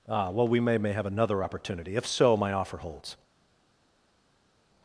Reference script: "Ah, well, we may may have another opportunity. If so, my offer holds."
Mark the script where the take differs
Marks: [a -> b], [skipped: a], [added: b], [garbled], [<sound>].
"Ah, well, we may may have another opportunity. If so, my offer holds."